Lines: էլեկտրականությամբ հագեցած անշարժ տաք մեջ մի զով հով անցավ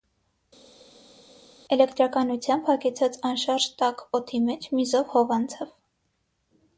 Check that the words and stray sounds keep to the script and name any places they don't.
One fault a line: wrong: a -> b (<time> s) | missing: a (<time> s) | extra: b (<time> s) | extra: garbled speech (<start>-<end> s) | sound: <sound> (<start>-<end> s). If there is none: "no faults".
extra: օդի (4.2 s)